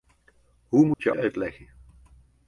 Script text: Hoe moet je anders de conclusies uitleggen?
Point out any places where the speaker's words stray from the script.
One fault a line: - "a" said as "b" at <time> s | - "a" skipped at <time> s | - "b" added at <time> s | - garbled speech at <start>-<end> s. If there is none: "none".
- "anders de conclusies" skipped at 1.1 s